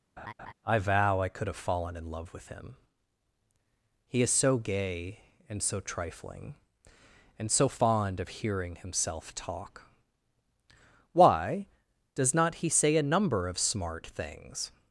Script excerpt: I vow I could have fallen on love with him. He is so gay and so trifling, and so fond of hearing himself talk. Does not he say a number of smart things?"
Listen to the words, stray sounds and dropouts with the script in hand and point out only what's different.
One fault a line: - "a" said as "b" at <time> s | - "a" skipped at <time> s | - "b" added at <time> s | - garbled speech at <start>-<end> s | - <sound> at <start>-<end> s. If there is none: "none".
- laugh at 0.2-0.5 s
- "on" said as "in" at 2.0 s
- "Why" added at 11.1 s